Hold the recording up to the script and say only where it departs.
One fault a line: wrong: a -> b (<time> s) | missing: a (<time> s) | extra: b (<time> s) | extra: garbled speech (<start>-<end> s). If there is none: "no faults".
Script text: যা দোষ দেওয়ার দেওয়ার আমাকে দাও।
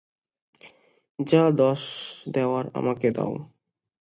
missing: দেওয়ার (2.6 s)